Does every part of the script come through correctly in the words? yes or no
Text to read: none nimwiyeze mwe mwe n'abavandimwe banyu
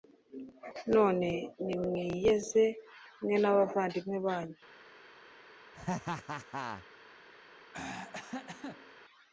no